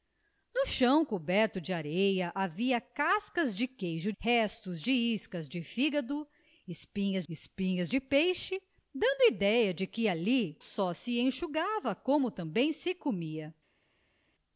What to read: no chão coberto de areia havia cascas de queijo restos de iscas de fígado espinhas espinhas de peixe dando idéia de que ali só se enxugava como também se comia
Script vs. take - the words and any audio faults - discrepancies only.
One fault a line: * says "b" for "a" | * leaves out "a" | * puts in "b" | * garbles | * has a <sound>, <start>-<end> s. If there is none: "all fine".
all fine